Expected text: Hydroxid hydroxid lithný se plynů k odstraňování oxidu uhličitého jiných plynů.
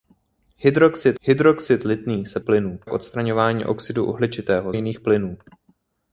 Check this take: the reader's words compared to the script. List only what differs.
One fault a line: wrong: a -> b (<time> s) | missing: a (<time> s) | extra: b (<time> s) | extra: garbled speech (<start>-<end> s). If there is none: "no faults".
no faults